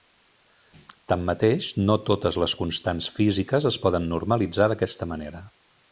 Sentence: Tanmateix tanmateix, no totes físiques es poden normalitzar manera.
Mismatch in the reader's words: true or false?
true